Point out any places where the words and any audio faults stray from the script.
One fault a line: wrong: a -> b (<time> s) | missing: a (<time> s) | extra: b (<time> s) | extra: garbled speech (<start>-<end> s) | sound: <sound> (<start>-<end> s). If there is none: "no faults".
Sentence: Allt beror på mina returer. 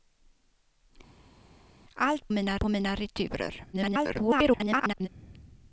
wrong: beror -> mina (2.3 s)
extra: garbled speech (3.7-5.1 s)